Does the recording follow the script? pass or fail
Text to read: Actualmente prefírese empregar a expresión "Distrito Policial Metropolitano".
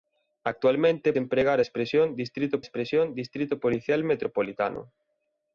fail